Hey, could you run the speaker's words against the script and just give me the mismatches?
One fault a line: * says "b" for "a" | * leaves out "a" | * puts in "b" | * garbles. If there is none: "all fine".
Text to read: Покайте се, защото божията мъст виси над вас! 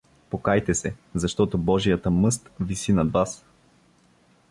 all fine